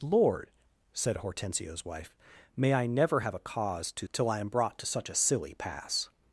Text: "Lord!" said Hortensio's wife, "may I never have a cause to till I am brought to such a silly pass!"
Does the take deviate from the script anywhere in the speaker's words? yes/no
no